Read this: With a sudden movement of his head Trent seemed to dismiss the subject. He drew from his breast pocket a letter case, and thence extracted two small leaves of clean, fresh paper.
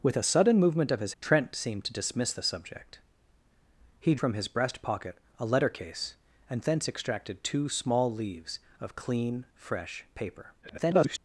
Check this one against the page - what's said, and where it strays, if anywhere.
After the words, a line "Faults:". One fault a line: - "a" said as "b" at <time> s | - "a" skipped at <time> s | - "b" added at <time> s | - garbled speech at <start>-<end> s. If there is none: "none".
With a sudden movement of his Trent seemed to dismiss the subject. He from his breast pocket a letter case, and thence extracted two small leaves of clean, fresh paper. [garbled]
Faults:
- "head" skipped at 1.1 s
- "drew" skipped at 4.2 s
- garbled speech at 10.6-11.2 s